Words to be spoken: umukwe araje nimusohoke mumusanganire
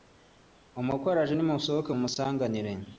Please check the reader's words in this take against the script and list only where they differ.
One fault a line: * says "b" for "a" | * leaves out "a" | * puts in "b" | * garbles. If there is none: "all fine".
all fine